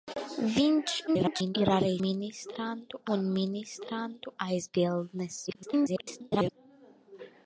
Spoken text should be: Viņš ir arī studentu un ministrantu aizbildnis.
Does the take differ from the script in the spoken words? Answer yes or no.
yes